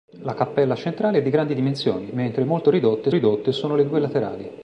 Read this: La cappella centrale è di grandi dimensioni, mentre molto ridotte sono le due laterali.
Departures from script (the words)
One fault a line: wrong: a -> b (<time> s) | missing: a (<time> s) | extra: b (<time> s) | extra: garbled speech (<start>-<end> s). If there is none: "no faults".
extra: ridotte (3.1 s)